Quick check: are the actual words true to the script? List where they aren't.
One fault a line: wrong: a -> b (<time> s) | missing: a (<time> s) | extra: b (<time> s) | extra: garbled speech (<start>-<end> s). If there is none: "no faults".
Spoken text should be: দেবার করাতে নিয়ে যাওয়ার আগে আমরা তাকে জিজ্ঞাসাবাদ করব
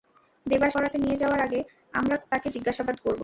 no faults